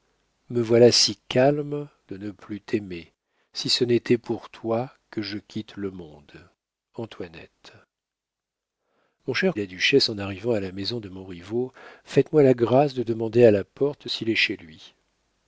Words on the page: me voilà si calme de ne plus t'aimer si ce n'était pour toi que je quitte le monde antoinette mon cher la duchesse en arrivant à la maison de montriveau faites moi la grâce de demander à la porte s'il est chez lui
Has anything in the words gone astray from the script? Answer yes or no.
no